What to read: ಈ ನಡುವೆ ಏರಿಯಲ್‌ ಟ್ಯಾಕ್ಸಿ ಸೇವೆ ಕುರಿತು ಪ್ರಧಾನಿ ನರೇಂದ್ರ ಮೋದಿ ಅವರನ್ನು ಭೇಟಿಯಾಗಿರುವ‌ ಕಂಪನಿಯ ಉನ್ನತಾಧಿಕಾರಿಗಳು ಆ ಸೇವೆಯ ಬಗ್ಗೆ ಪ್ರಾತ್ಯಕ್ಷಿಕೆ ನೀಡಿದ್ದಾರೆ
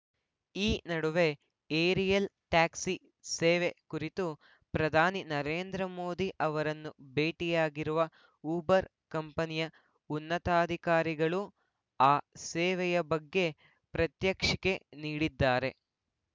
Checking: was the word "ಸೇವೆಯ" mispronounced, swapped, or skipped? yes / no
no